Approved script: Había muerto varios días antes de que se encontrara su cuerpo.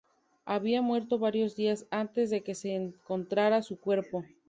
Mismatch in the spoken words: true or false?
false